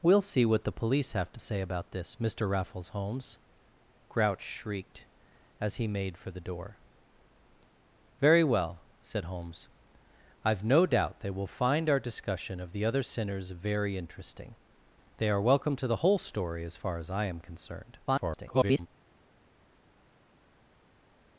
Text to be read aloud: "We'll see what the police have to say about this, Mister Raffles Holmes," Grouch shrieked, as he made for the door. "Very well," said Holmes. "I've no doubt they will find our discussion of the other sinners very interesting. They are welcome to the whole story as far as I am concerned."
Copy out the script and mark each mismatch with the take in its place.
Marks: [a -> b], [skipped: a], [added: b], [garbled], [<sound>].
"We'll see what the police have to say about this, Mister Raffles Holmes," Grouch shrieked, as he made for the door. "Very well," said Holmes. "I've no doubt they will find our discussion of the other sinners very interesting. They are welcome to the whole story as far as I am concerned." [garbled]